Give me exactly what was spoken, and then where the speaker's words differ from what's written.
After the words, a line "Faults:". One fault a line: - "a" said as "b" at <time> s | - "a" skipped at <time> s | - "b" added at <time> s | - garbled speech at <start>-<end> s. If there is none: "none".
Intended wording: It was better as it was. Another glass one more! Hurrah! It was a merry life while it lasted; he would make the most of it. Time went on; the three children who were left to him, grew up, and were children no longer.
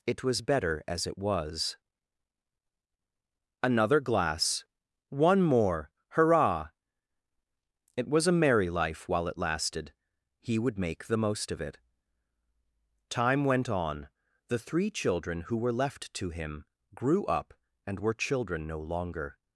It was better as it was. Another glass one more! Hurrah! It was a merry life while it lasted; he would make the most of it. Time went on; the three children who were left to him, grew up, and were children no longer.
Faults:
none